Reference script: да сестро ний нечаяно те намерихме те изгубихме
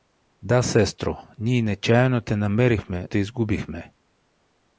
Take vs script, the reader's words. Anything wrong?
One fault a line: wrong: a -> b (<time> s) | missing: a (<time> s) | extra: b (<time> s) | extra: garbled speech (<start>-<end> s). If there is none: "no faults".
no faults